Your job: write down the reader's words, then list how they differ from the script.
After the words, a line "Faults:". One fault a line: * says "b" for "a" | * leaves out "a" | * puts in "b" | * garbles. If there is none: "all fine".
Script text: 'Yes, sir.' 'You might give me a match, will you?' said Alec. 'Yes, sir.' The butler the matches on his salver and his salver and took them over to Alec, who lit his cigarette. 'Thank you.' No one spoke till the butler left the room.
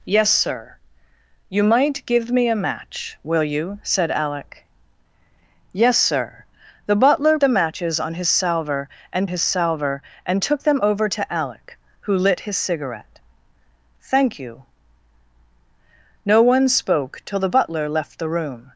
'Yes, sir.' 'You might give me a match, will you?' said Alec. 'Yes, sir.' The butler the matches on his salver and his salver and took them over to Alec, who lit his cigarette. 'Thank you.' No one spoke till the butler left the room.
Faults:
all fine